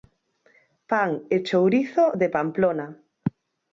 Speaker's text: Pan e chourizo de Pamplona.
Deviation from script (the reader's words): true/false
false